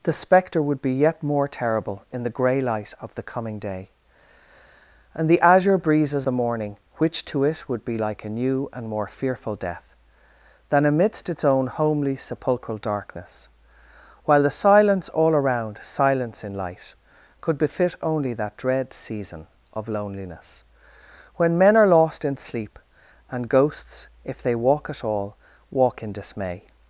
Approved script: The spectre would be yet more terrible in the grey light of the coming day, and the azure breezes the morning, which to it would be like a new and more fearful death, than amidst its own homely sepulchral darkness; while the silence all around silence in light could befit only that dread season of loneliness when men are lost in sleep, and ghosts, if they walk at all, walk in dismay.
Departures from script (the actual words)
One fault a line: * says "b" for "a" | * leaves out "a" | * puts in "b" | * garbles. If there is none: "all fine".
all fine